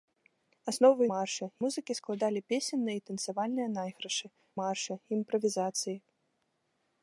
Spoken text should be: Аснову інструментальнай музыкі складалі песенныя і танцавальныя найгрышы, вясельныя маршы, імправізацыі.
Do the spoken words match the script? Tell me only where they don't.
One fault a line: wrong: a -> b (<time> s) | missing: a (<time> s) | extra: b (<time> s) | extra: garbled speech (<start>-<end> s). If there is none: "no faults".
wrong: інструментальнай -> маршы (1.1 s)
missing: вясельныя (4.3 s)